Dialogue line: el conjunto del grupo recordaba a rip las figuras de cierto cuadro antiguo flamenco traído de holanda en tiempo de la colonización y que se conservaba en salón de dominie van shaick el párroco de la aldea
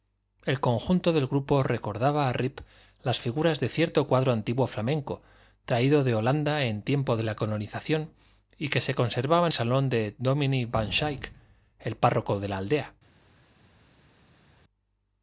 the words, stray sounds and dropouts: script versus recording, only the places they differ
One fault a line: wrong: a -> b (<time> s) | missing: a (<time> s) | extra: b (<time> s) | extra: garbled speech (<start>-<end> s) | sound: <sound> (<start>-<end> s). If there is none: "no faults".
no faults